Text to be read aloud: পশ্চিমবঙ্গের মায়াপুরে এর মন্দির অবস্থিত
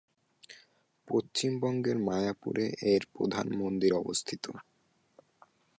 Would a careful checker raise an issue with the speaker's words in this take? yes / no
yes